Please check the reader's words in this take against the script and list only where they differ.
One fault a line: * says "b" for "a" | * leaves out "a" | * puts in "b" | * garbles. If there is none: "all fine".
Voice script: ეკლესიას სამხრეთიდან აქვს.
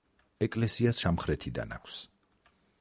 all fine